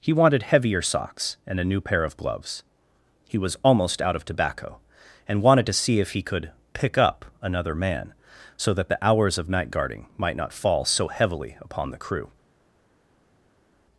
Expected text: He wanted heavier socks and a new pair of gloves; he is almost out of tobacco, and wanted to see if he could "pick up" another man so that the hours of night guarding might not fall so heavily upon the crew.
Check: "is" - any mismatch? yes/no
yes